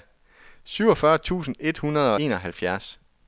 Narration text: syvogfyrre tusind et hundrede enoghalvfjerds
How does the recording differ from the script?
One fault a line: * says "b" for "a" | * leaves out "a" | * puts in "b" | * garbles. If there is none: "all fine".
all fine